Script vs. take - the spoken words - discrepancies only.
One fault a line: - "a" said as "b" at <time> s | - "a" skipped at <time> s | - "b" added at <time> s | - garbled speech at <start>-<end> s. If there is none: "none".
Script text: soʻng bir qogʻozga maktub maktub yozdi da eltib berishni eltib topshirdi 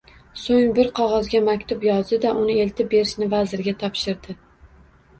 - "maktub" skipped at 1.9 s
- "uni" added at 2.5 s
- "eltib" said as "vazirga" at 3.4 s